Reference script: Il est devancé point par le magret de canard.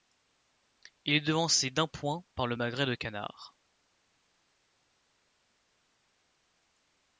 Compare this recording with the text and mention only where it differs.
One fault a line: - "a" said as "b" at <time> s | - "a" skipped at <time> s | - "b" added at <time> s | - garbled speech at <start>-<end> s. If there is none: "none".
- "d'un" added at 1.7 s